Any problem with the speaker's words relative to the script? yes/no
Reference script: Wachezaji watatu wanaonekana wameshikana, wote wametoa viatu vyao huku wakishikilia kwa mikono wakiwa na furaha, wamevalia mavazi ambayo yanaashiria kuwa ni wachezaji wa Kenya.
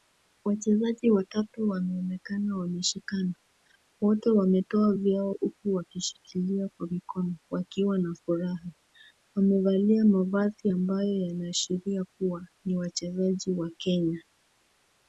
yes